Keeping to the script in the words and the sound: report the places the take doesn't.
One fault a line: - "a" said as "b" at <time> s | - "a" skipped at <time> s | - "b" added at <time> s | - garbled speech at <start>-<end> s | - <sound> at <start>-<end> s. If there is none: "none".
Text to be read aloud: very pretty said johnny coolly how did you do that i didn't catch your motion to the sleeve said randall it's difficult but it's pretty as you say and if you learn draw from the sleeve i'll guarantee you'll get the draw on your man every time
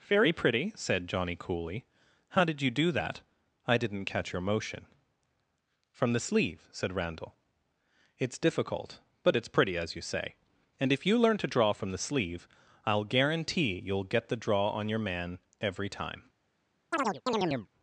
- "to" said as "from" at 5.9 s
- "to" added at 11.4 s
- chirp at 16.9-17.7 s